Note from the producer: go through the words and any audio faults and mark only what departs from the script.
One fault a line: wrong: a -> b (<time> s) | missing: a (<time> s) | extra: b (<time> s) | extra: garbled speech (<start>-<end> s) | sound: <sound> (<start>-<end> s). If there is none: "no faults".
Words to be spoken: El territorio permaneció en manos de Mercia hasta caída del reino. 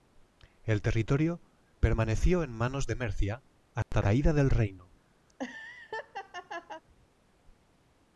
sound: dropout (3.8-3.9 s)
sound: laugh (5.3-6.8 s)